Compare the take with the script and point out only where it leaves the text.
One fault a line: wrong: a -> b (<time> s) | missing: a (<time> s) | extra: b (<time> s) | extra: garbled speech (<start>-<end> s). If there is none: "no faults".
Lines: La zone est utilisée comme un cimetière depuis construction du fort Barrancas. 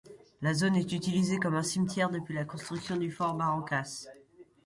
extra: la (2.3 s)